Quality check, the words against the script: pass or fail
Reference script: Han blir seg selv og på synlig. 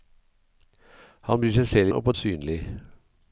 pass